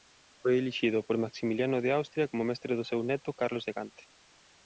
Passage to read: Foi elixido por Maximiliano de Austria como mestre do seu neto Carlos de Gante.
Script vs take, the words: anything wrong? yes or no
no